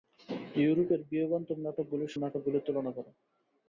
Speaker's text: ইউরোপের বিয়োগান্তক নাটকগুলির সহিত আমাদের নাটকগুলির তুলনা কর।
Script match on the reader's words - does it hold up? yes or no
no